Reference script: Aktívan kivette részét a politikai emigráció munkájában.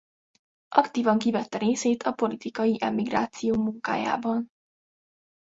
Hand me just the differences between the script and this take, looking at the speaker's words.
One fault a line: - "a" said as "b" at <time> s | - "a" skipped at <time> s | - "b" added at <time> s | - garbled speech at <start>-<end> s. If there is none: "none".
none